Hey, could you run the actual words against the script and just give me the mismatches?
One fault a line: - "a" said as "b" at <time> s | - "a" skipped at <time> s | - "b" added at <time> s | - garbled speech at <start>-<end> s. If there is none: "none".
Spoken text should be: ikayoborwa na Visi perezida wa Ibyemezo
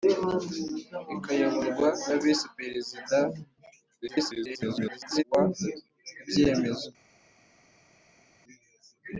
- garbled speech at 4.0-5.2 s